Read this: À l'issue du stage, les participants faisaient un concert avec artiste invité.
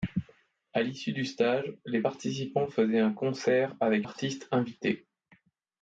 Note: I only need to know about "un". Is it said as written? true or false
true